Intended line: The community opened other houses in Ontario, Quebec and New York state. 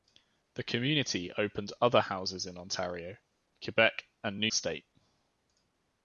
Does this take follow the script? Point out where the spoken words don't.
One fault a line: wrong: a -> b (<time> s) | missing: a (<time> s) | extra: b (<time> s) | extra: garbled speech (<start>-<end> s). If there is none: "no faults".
missing: York (4.5 s)